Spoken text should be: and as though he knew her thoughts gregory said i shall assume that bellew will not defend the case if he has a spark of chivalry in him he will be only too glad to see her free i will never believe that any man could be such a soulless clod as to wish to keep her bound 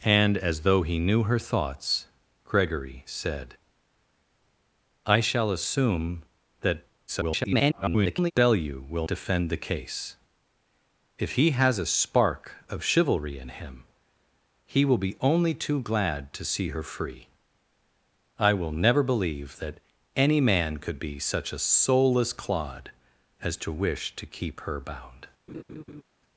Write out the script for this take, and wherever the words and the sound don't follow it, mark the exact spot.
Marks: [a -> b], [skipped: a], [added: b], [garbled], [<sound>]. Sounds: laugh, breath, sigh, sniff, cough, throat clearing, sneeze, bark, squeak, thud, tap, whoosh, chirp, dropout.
and as though he knew her thoughts gregory said i shall assume that [garbled] bellew will [skipped: not] defend the case if he has a spark of chivalry in him he will be only too glad to see her free i will never believe that any man could be such a soulless clod as to wish to keep her bound [laugh]